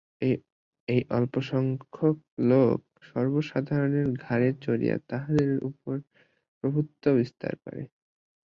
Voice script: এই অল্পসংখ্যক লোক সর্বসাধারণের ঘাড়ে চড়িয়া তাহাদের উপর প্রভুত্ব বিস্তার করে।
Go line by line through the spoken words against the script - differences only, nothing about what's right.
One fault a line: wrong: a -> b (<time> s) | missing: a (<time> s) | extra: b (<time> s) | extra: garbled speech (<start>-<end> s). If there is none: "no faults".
no faults